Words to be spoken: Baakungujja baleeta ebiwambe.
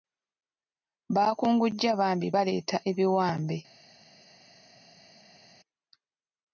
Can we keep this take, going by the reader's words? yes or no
no